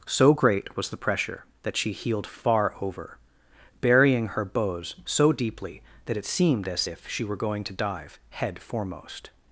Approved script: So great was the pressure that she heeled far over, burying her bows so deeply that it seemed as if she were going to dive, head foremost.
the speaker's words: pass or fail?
pass